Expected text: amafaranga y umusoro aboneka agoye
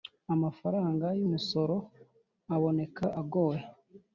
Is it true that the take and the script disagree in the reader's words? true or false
false